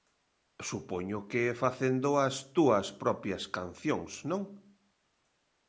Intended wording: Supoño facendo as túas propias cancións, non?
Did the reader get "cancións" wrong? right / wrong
right